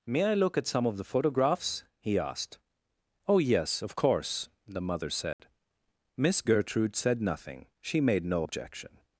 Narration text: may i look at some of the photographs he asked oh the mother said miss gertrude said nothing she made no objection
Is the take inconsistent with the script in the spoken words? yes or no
yes